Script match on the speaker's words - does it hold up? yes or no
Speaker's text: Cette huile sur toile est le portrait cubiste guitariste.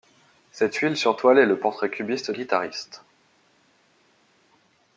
yes